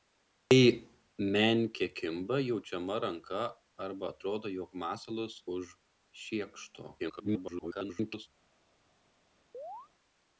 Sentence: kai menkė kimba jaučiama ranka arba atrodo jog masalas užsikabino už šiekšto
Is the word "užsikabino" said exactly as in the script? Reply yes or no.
no